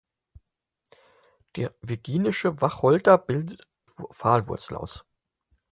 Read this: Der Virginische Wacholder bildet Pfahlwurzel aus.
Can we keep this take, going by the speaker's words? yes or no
yes